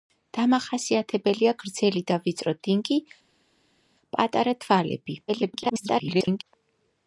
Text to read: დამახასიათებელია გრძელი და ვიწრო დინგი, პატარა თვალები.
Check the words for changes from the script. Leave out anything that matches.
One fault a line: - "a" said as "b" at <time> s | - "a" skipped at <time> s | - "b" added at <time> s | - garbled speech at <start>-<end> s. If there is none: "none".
- garbled speech at 5.3-6.4 s